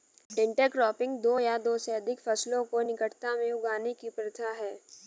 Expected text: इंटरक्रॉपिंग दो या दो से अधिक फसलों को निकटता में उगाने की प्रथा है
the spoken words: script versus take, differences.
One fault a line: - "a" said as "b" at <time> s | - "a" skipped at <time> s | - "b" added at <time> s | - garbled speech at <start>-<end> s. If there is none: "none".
none